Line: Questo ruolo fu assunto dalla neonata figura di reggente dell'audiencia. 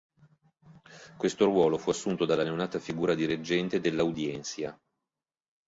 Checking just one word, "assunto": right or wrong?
right